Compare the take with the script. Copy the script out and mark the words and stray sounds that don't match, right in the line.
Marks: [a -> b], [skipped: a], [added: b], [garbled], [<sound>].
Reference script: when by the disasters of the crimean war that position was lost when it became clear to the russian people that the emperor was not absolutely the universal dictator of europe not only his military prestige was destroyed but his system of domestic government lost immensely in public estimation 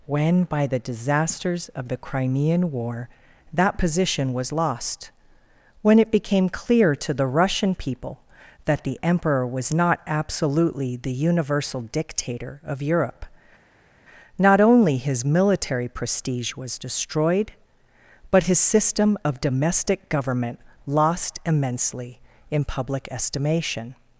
when by the disasters of the crimean war that position was lost when it became clear to the russian people that the emperor was not absolutely the universal dictator of europe not only his military prestige was destroyed but his system of domestic government lost immensely in public estimation